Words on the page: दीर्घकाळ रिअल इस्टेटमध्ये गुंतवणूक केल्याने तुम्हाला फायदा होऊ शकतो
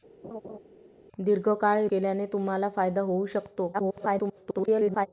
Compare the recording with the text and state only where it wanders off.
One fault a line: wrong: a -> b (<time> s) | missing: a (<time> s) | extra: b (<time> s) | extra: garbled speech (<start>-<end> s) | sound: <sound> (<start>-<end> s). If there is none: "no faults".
sound: laugh (0.2-0.6 s)
missing: रिअल इस्टेटमध्ये गुंतवणूक (1.9 s)
extra: garbled speech (3.7-5.1 s)